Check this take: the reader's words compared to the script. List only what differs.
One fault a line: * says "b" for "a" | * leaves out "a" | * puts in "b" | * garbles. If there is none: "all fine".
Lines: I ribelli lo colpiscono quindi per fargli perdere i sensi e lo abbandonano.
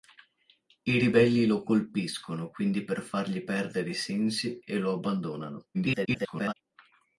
* garbles